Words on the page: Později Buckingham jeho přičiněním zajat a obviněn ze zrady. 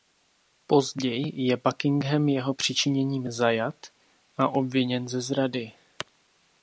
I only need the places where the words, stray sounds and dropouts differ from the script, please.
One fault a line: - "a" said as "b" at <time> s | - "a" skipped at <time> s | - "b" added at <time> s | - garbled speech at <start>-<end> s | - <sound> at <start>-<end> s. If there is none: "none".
- "je" added at 1.3 s